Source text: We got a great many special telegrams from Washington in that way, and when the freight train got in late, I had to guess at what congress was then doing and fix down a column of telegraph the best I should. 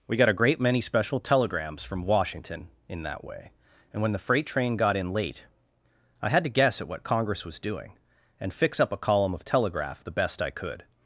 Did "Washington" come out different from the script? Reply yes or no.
no